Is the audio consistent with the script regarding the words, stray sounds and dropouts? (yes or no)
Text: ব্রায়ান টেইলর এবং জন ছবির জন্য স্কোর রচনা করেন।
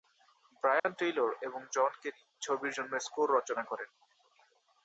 no